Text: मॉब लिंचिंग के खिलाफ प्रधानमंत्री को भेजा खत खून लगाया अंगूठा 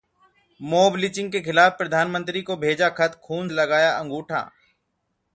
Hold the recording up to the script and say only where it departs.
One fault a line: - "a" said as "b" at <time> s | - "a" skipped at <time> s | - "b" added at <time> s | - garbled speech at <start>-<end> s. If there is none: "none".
none